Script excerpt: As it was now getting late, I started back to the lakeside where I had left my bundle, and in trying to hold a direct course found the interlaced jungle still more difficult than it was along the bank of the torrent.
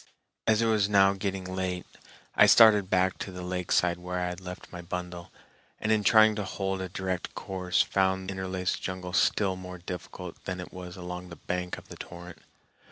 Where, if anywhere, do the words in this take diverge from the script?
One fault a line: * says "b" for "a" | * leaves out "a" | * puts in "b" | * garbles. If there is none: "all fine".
* leaves out "the"